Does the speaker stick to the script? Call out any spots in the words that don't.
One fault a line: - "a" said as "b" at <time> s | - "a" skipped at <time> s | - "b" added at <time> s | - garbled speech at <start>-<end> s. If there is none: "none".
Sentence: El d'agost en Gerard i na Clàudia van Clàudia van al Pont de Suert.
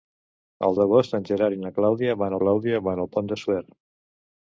none